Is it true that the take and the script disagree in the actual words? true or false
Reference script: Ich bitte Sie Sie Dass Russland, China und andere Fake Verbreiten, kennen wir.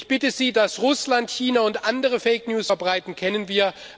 true